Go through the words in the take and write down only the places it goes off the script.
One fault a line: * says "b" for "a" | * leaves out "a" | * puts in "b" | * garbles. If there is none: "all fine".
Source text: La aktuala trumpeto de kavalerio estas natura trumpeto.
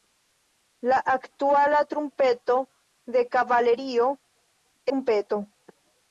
* leaves out "estas natura"